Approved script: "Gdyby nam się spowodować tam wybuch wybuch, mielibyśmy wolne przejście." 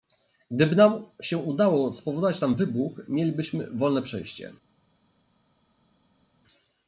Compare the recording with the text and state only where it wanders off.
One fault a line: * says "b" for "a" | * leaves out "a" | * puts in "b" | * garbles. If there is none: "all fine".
* puts in "udało"
* leaves out "wybuch"